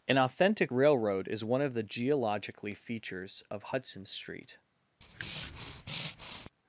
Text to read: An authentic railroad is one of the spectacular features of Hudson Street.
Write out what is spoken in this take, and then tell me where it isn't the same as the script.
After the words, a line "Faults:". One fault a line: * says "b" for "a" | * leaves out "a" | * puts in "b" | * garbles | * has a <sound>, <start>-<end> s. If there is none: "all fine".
An authentic railroad is one of the geologically features of Hudson Street.
Faults:
* says "geologically" for "spectacular"
* has a breath, 5.0-6.5 s